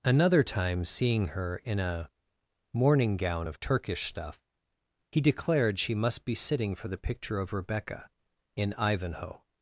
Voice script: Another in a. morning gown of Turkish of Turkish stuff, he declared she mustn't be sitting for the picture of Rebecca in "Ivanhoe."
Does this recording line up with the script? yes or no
no